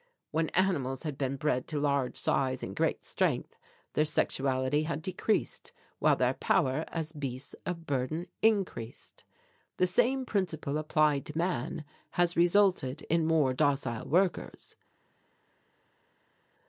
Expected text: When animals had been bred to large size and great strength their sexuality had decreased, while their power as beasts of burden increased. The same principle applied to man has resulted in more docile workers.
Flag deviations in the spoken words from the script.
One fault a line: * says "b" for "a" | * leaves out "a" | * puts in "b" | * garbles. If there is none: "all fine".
all fine